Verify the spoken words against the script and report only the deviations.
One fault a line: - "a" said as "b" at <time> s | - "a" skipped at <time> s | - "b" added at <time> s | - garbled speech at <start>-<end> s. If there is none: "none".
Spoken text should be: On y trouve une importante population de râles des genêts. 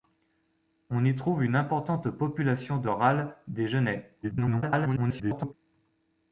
- garbled speech at 4.2-5.5 s